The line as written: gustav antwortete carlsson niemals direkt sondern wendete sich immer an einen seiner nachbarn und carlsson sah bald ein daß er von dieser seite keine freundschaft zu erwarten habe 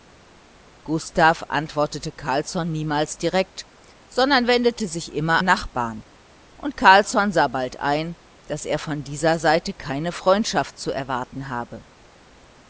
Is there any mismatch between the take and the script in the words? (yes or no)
yes